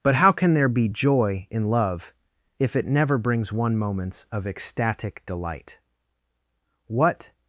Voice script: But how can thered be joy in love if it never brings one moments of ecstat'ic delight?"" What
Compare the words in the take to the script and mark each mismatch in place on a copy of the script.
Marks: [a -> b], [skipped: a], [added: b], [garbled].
But how can [thered -> there] be joy in love if it never brings one moments of ecstat'ic delight?"" What